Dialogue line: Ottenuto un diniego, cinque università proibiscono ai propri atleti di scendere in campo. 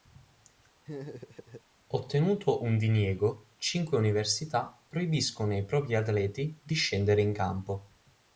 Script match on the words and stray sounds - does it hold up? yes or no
no